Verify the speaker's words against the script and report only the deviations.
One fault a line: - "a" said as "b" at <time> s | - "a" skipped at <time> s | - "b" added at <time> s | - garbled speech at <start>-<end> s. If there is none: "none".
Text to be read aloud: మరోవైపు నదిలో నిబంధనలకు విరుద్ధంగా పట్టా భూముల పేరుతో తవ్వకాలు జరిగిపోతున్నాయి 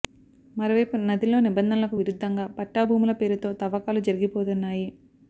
none